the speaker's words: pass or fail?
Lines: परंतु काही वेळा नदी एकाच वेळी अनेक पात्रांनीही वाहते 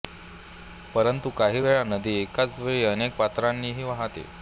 pass